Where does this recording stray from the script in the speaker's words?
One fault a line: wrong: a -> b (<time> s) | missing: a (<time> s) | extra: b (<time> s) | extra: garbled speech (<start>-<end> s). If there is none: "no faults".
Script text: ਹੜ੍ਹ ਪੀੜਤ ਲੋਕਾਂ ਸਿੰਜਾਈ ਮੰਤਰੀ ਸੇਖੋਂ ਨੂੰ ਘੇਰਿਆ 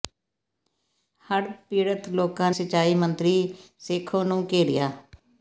no faults